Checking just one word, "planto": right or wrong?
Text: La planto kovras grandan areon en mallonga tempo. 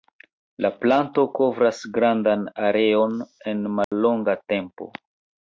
right